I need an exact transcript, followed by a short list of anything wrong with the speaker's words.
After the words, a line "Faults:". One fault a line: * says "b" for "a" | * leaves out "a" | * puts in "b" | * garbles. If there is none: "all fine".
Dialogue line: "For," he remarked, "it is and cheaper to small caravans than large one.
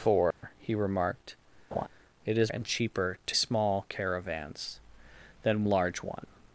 "For," he remarked, "it is and cheaper to small caravans than large one.
Faults:
all fine